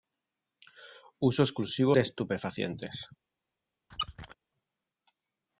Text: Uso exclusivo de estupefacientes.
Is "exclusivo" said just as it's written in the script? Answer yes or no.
yes